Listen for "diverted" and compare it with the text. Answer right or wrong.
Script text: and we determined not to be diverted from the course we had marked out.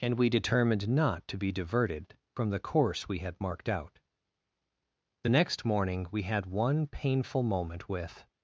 right